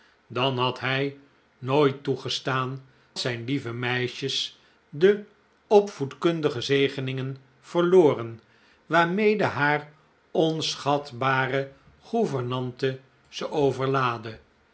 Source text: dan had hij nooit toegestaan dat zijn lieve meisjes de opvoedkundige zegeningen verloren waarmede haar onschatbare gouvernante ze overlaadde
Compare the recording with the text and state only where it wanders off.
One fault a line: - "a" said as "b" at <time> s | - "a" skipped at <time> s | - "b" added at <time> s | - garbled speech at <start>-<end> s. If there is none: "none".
- "dat" skipped at 2.8 s